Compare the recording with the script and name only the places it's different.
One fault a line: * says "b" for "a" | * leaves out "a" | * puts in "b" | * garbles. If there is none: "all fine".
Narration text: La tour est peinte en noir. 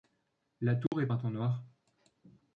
all fine